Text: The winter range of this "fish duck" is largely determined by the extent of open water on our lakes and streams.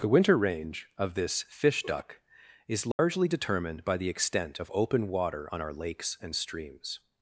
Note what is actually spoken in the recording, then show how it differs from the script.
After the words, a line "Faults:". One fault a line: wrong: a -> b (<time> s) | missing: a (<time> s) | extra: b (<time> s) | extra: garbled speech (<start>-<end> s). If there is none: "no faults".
The winter range of this "fish duck" is largely determined by the extent of open water on our lakes and streams.
Faults:
no faults